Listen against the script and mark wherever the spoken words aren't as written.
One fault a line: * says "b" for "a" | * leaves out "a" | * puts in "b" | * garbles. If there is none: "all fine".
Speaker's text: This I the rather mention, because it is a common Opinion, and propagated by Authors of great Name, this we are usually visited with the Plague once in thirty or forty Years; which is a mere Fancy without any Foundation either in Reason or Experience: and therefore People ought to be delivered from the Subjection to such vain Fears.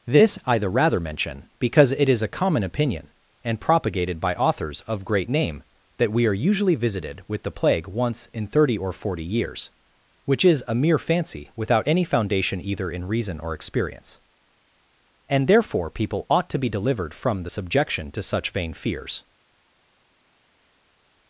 * says "that" for "this"